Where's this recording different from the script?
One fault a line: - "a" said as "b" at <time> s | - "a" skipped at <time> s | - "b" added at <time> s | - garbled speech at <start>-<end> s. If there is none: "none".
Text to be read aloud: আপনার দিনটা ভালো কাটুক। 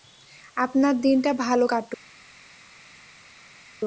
none